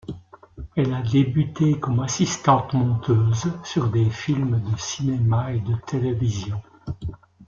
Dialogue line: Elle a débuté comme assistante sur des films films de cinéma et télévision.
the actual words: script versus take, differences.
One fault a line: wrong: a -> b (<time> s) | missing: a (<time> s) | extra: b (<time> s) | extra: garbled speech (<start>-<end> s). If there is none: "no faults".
extra: monteuse (2.7 s)
missing: films (4.6 s)
extra: de (5.6 s)